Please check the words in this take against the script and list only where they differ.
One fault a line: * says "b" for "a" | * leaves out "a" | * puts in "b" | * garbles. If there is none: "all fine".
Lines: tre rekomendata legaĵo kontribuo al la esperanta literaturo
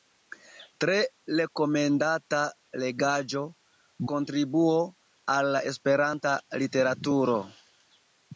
all fine